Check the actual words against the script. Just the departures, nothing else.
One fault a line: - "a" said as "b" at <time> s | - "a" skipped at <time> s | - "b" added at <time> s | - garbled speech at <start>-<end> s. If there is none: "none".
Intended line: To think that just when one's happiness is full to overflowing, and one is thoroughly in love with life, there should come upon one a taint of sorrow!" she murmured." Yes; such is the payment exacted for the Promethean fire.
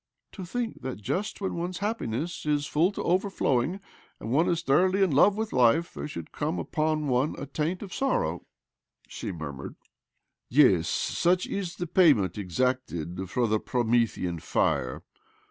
none